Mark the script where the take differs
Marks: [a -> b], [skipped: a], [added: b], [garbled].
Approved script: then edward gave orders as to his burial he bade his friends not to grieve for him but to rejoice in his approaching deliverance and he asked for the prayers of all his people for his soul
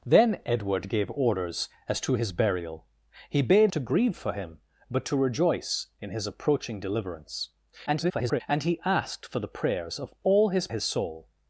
then edward gave orders as to his burial he bade [skipped: his friends not] to grieve for him but to rejoice in his approaching deliverance [garbled] and he asked for the prayers of all his [skipped: people for] his soul